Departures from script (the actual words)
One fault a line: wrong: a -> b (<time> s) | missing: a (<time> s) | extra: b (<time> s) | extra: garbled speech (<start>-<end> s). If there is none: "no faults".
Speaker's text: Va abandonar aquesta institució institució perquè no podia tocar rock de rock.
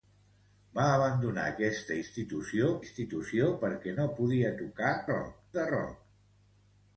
no faults